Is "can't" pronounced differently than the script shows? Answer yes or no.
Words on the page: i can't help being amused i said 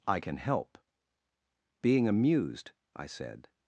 yes